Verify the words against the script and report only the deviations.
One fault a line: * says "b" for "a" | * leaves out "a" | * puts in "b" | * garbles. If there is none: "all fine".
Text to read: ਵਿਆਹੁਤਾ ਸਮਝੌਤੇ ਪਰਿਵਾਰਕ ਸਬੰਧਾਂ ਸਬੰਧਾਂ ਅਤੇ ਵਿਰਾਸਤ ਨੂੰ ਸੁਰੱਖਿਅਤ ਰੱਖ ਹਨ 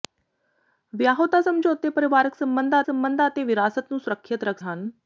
all fine